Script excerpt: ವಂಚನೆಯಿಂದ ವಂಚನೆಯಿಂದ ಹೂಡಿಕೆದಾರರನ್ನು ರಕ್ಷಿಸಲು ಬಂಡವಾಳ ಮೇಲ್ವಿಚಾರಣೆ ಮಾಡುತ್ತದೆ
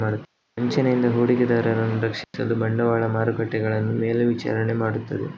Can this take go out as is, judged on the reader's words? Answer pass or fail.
fail